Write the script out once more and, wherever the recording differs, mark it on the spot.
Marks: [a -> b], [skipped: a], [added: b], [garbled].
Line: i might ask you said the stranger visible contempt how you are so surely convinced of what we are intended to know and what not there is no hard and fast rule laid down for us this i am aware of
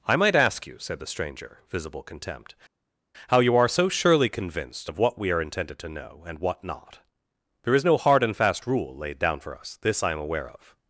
i might ask you said the stranger visible contempt how you are so surely convinced of what we are intended to know and what not there is no hard and fast rule laid down for us this i am aware of